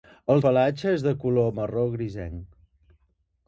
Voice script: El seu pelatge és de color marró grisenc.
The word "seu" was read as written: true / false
false